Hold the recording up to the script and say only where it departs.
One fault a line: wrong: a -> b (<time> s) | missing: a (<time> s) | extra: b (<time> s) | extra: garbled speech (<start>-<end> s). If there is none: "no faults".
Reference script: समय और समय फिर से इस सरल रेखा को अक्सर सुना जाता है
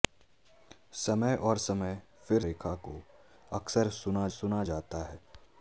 missing: से इस सरल (2.4 s)
extra: सुना (4.3 s)